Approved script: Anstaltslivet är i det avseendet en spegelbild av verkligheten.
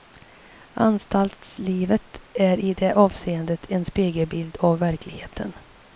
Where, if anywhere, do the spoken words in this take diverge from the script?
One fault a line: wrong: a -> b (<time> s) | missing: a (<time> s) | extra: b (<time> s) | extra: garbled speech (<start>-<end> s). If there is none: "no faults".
no faults